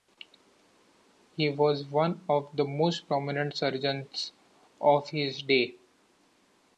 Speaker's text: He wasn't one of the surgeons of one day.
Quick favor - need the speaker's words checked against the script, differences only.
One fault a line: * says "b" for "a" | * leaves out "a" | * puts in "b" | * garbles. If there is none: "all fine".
* says "was" for "wasn't"
* puts in "most prominent"
* says "his" for "one"